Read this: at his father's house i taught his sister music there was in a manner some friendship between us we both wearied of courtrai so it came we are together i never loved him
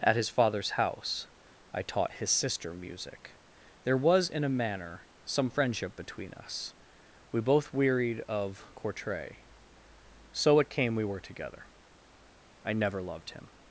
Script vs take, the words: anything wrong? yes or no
yes